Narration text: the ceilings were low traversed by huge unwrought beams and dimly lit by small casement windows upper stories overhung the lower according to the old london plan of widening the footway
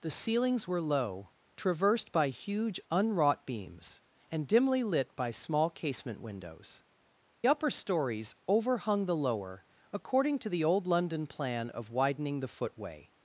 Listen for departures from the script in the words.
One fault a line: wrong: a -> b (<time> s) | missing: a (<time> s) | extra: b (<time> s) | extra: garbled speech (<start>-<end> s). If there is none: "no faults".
no faults